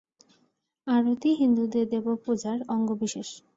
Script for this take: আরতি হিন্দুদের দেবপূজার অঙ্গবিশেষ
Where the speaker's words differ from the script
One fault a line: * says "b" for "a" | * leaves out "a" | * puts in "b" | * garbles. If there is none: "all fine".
all fine